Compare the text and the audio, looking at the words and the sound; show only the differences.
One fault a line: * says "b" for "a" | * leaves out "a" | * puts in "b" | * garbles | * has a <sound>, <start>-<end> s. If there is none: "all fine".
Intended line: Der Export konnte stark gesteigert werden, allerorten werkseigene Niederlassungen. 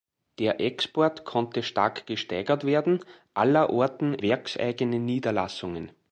all fine